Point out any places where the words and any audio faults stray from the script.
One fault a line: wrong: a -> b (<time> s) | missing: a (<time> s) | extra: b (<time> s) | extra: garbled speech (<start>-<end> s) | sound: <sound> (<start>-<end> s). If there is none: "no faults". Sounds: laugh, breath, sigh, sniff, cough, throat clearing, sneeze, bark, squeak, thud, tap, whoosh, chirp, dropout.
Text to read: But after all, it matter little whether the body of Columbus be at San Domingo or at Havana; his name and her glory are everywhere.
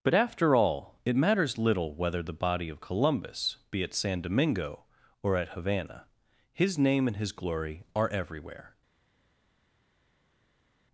wrong: matter -> matters (1.2 s)
wrong: her -> his (7.2 s)